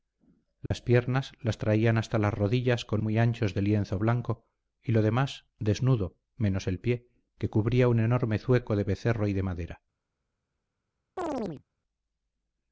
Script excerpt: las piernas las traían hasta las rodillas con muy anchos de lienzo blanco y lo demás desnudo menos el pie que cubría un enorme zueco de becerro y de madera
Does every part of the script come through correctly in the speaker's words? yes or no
yes